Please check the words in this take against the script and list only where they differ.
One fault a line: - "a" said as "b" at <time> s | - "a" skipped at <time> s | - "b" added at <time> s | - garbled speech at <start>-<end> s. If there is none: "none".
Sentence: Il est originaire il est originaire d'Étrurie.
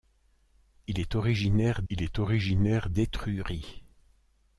none